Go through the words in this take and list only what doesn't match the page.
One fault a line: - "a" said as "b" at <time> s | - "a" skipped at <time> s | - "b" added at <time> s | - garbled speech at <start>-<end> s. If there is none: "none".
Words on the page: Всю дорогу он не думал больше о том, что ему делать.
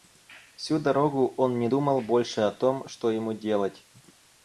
none